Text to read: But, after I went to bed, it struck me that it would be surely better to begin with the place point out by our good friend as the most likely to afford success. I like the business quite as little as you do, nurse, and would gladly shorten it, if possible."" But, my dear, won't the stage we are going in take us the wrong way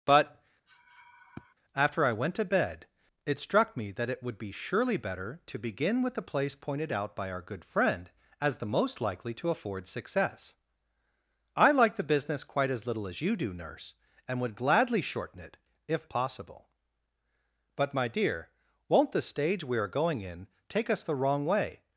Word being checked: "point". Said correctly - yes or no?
no